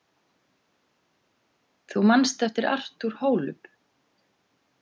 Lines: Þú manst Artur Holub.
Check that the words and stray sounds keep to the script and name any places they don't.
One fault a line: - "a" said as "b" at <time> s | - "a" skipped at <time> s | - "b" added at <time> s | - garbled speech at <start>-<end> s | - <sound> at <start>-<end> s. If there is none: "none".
- "eftir" added at 2.4 s